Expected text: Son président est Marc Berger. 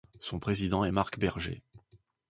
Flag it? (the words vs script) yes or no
no